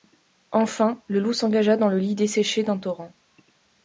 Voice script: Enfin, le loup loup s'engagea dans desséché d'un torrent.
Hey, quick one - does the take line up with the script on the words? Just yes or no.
no